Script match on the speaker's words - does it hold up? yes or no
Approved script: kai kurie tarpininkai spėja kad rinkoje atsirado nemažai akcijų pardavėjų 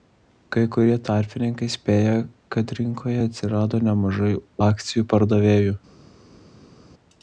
yes